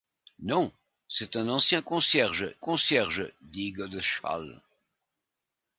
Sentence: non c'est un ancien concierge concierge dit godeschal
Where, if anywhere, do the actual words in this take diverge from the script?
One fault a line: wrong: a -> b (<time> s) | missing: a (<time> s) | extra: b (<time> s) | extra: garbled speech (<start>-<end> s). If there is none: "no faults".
no faults